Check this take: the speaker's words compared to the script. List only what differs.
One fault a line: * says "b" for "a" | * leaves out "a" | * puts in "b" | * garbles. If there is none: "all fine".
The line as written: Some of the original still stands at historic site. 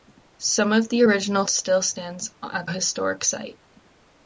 all fine